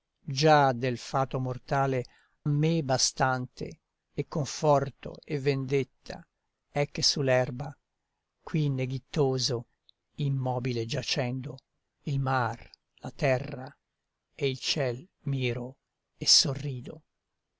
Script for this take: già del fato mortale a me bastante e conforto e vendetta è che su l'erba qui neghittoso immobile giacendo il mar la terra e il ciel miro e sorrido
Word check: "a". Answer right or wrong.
wrong